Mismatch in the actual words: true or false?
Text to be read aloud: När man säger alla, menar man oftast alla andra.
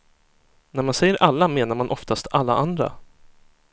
false